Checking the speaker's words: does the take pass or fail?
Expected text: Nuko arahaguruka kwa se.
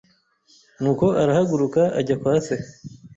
fail